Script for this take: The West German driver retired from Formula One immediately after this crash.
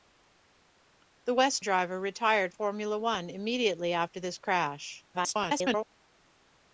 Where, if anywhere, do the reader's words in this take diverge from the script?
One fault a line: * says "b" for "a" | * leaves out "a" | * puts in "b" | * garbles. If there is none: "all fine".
* leaves out "German"
* leaves out "from"
* garbles